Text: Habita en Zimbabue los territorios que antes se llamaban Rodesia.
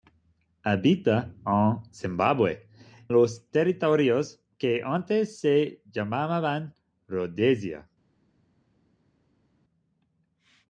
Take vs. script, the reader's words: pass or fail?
pass